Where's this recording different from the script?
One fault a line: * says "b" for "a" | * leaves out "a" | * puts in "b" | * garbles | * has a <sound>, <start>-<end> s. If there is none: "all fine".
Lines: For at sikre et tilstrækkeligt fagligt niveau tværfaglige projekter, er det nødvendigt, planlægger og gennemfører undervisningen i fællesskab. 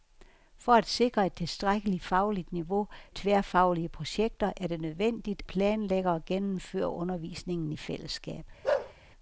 * has a bark, 8.6-8.9 s